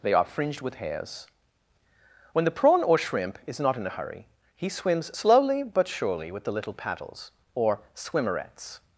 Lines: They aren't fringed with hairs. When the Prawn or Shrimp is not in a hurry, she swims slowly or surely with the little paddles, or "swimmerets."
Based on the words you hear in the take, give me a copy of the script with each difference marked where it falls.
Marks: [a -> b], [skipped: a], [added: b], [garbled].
They [aren't -> are] fringed with hairs. When the Prawn or Shrimp is not in a hurry, [she -> he] swims slowly [or -> but] surely with the little paddles, or "swimmerets."